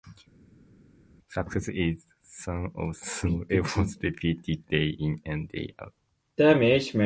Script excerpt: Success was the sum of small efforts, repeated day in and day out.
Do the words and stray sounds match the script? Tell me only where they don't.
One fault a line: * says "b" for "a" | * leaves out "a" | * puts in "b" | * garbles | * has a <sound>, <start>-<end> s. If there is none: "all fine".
* says "is" for "was"